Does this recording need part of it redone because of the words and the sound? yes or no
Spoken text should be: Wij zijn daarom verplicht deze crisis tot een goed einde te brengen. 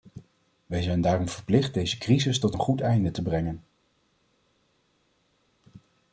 no